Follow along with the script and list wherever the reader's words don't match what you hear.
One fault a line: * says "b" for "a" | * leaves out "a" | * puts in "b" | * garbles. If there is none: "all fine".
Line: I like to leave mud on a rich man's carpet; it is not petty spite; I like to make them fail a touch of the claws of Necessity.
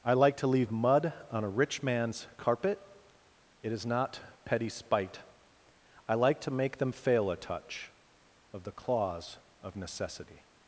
all fine